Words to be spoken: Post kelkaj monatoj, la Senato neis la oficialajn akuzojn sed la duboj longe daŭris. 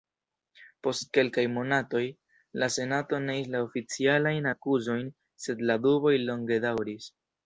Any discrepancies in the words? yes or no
no